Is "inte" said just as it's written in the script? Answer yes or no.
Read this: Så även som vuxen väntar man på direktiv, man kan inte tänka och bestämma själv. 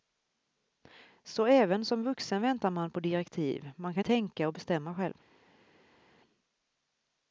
no